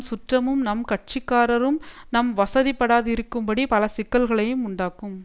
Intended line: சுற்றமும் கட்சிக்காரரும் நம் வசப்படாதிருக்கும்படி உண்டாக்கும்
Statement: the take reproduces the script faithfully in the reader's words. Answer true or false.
false